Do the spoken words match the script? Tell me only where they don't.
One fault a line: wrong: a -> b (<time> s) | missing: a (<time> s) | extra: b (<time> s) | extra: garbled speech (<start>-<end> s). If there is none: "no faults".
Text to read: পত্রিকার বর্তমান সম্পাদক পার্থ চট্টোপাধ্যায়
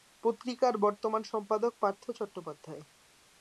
no faults